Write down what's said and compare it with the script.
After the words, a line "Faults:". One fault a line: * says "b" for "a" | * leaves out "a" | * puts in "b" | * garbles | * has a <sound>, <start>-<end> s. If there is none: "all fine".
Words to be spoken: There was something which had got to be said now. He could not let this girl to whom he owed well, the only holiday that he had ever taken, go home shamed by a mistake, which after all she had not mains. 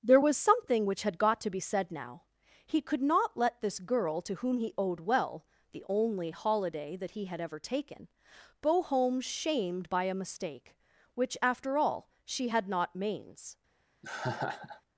There was something which had got to be said now. He could not let this girl to whom he owed well, the only holiday that he had ever taken, go home shamed by a mistake, which after all she had not mains.
Faults:
* has a laugh, 14.0-14.8 s